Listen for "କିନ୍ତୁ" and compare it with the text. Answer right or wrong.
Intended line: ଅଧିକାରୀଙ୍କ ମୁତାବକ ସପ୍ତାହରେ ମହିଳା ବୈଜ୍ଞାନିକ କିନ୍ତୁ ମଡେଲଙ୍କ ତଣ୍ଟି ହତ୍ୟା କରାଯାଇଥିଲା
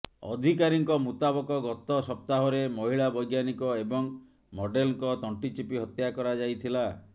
wrong